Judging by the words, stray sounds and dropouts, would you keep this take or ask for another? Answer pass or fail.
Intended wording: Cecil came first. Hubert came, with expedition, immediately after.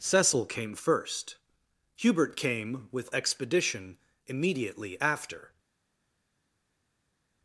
pass